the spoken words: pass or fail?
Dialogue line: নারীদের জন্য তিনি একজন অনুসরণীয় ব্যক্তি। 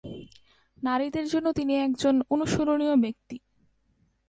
pass